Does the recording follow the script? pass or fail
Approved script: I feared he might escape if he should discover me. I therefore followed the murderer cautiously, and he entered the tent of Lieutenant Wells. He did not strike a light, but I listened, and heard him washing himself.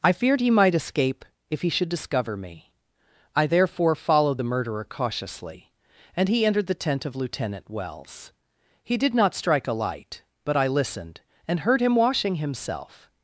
pass